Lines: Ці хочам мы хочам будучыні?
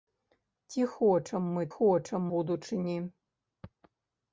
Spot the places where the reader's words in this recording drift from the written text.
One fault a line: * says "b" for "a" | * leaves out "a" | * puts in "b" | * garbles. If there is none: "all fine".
all fine